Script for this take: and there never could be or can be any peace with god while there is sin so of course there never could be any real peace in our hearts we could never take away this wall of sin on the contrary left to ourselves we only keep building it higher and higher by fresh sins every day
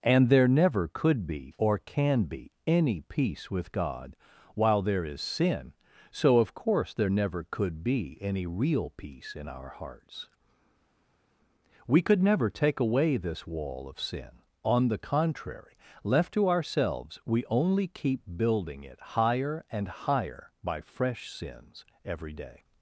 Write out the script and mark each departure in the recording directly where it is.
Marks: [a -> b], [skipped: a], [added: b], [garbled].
and there never could be or can be any peace with god while there is sin so of course there never could be any real peace in our hearts we could never take away this wall of sin on the contrary left to ourselves we only keep building it higher and higher by fresh sins every day